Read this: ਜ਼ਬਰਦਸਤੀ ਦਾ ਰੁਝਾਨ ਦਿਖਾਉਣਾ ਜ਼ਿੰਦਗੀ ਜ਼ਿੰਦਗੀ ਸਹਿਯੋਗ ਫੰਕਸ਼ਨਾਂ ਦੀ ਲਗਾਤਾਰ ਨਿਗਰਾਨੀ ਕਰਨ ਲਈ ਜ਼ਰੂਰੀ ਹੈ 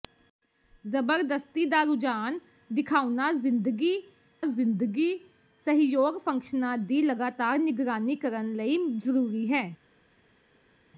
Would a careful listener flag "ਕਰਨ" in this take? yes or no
no